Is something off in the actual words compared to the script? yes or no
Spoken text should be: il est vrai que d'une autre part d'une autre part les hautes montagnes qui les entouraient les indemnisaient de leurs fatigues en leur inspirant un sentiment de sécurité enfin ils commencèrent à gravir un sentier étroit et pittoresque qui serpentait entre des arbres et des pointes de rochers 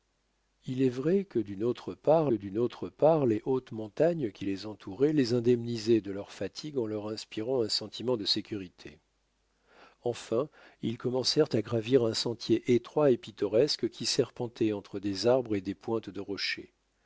no